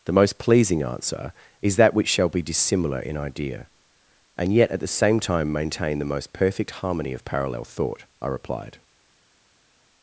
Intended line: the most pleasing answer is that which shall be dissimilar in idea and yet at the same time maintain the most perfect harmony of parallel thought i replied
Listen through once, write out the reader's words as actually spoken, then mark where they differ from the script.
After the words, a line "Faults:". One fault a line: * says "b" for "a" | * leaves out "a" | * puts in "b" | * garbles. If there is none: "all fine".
the most pleasing answer is that which shall be dissimilar in idea and yet at the same time maintain the most perfect harmony of parallel thought i replied
Faults:
all fine